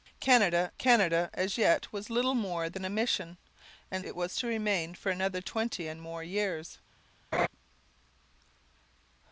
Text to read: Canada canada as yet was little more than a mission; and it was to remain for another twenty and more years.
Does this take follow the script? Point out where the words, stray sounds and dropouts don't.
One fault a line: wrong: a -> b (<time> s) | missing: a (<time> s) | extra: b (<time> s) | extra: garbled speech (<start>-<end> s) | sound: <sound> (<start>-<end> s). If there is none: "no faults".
sound: laugh (7.3-7.5 s)